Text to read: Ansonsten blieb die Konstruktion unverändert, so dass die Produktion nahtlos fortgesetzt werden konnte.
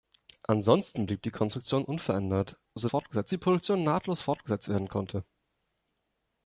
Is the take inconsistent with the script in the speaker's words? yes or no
yes